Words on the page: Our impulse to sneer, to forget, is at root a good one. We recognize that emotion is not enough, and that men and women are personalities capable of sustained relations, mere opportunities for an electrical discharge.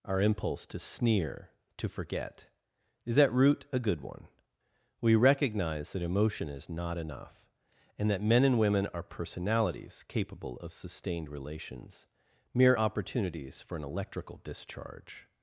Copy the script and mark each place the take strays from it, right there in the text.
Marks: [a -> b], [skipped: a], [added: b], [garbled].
Our impulse to sneer, to forget, is at root a good one. We recognize that emotion is not enough, and that men and women are personalities capable of sustained relations, mere opportunities for an electrical discharge.